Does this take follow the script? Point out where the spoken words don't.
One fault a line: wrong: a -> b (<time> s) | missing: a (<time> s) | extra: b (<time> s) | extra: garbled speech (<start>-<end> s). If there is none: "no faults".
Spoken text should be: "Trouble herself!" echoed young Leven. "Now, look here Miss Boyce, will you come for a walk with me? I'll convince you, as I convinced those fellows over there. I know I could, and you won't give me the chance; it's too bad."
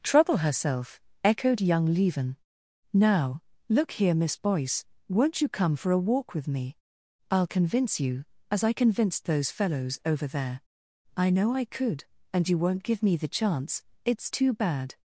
wrong: will -> won't (5.1 s)